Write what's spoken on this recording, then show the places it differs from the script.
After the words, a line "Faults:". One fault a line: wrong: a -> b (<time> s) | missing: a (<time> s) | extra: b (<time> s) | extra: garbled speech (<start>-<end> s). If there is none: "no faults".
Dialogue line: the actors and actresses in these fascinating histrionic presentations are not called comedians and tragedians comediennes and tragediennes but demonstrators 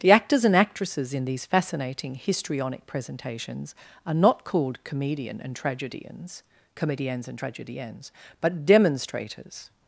the actors and actresses in these fascinating histrionic presentations are not called comedian and tragedians comediennes and tragediennes but demonstrators
Faults:
wrong: comedians -> comedian (4.8 s)